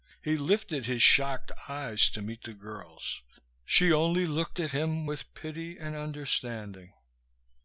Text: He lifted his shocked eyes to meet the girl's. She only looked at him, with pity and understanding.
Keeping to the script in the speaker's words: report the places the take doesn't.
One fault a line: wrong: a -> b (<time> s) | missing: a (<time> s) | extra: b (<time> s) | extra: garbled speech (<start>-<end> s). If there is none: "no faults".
no faults